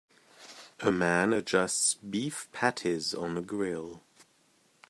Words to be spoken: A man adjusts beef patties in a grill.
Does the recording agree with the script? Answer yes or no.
no